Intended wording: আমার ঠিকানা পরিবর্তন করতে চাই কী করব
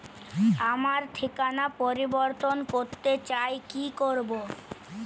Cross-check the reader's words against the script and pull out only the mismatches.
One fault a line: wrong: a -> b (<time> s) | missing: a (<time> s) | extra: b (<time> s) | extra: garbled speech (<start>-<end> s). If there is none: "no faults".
no faults